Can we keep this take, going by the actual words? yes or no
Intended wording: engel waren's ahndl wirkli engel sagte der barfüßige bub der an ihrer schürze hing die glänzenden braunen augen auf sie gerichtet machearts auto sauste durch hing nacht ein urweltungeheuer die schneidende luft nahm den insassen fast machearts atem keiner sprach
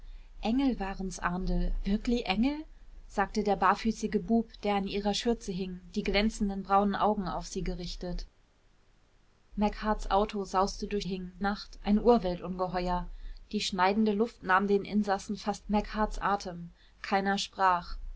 yes